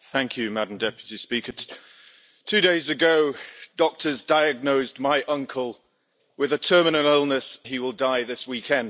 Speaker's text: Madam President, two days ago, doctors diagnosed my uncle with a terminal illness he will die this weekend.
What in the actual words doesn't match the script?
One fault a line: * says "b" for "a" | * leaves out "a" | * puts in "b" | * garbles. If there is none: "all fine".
all fine